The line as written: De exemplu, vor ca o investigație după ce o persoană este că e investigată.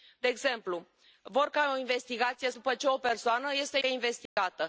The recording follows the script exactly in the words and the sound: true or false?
false